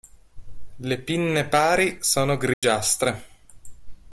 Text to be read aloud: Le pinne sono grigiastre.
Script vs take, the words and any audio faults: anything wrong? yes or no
yes